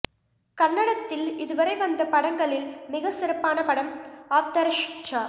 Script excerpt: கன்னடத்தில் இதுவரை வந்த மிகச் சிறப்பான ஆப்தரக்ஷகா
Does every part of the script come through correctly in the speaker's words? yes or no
no